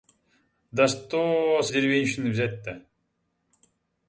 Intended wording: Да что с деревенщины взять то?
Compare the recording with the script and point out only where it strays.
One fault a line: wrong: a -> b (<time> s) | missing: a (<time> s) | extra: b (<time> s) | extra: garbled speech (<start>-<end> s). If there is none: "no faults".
no faults